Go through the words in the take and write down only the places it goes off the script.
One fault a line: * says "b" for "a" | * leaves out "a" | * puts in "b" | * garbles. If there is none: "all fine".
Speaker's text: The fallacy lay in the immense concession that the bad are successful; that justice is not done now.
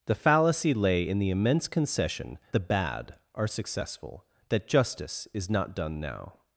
* leaves out "that"